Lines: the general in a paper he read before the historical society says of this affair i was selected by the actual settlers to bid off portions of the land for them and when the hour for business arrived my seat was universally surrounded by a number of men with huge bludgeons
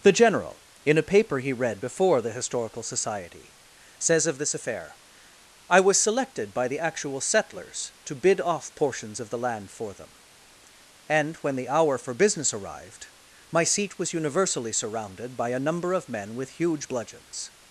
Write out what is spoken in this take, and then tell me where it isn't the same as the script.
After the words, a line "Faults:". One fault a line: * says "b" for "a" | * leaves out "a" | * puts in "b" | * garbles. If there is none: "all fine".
the general in a paper he read before the historical society says of this affair i was selected by the actual settlers to bid off portions of the land for them and when the hour for business arrived my seat was universally surrounded by a number of men with huge bludgeons
Faults:
all fine